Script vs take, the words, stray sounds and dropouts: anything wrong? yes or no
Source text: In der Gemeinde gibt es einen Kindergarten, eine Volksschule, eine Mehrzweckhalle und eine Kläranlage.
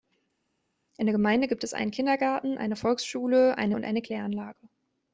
yes